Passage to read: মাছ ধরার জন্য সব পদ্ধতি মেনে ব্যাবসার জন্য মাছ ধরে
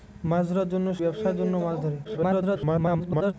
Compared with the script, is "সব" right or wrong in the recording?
wrong